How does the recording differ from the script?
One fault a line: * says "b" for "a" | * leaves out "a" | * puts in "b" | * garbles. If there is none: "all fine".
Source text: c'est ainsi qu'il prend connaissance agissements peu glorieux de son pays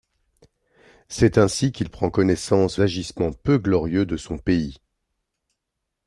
all fine